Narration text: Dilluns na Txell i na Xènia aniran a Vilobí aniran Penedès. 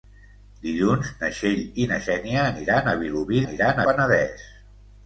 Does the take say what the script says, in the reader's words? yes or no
yes